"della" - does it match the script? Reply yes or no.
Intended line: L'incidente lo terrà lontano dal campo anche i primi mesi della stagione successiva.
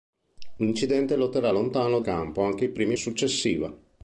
no